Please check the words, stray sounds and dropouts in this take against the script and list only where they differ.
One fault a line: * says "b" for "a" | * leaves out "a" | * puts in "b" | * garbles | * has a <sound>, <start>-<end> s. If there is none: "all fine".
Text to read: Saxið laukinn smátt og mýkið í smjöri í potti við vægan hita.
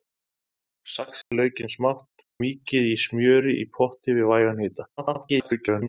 * has a dropout, 1.2-1.3 s
* leaves out "og"
* garbles